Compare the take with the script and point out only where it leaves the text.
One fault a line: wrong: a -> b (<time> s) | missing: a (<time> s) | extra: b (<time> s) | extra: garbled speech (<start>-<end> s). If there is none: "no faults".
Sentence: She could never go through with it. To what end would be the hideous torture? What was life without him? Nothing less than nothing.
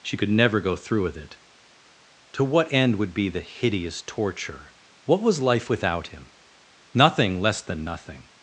no faults